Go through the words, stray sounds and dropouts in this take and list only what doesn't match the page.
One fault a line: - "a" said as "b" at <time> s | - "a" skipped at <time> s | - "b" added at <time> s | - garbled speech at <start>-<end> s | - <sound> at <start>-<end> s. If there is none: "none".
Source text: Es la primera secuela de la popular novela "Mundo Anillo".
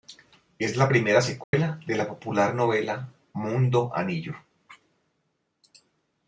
- dropout at 1.4-1.5 s